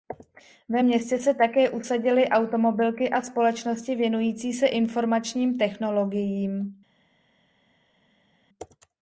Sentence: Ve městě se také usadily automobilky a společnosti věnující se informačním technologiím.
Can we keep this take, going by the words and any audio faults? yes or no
yes